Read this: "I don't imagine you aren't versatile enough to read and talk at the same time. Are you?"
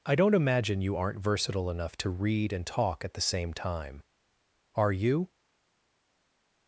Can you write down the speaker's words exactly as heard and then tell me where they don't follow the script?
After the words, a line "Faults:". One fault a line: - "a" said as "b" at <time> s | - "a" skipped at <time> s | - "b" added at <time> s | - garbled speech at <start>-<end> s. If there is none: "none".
"I don't imagine you aren't versatile enough to read and talk at the same time. Are you?"
Faults:
none